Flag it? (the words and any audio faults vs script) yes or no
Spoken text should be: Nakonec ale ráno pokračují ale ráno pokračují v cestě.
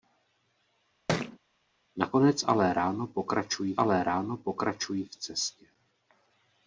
yes